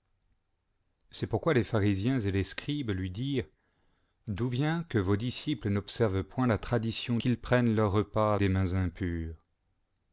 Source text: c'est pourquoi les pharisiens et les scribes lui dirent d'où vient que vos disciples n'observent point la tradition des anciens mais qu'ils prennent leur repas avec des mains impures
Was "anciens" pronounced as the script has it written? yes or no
no